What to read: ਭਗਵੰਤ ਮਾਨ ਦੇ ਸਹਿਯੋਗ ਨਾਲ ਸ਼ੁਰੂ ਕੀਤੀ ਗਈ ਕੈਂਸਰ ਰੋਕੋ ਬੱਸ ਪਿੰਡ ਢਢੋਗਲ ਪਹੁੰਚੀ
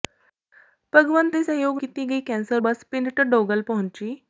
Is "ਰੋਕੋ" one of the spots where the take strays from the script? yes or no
yes